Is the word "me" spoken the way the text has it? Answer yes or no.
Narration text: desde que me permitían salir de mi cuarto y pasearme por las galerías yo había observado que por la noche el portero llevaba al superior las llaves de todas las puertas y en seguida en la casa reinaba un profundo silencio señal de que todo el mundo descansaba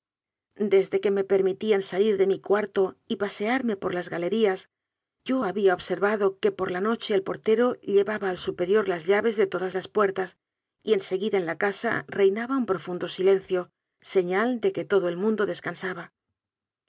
yes